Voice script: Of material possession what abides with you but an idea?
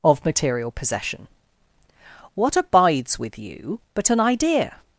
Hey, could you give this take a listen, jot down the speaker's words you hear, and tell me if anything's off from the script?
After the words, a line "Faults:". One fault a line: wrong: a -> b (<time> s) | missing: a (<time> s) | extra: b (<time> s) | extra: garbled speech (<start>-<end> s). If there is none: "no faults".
Of material possession what abides with you but an idea?
Faults:
no faults